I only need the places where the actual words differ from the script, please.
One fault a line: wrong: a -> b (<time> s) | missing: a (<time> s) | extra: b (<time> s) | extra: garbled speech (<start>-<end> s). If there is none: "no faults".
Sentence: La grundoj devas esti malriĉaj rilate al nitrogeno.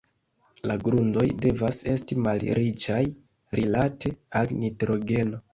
no faults